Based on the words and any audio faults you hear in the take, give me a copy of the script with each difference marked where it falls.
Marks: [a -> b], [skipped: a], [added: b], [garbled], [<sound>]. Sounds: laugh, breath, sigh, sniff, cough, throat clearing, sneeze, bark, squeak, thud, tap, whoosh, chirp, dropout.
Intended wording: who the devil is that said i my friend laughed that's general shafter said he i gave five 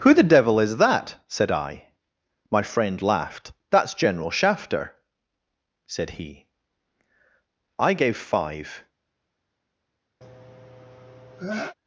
who the devil is that said i my friend laughed that's general shafter said he i gave five [sneeze]